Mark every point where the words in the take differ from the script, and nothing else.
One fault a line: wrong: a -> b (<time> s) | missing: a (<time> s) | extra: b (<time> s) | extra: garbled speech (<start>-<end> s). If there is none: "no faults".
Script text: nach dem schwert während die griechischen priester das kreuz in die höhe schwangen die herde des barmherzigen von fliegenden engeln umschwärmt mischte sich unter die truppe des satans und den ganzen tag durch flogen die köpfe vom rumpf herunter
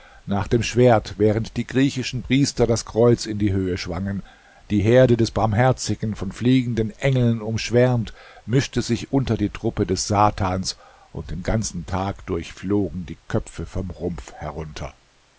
no faults